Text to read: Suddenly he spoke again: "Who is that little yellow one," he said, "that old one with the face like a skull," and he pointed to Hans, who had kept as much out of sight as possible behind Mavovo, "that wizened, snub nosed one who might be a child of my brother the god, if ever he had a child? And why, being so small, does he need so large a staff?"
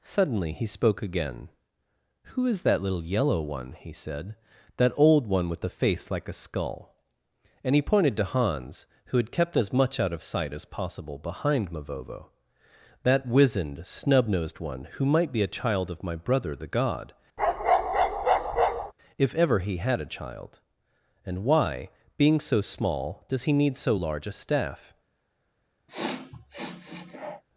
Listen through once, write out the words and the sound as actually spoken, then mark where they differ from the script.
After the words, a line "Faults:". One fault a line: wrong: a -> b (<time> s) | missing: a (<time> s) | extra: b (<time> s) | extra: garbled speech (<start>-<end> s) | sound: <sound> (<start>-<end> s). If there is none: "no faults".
Suddenly he spoke again: "Who is that little yellow one," he said, "that old one with the face like a skull," and he pointed to Hans, who had kept as much out of sight as possible behind Mavovo, "that wizened, snub nosed one who might be a child of my brother the god, if ever he had a child? And why, being so small, does he need so large a staff?"
Faults:
sound: bark (17.4-18.9 s)
sound: sniff (25.9-27.4 s)